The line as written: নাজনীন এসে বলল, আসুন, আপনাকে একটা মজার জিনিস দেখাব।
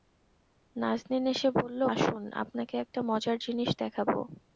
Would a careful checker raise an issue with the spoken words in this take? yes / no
no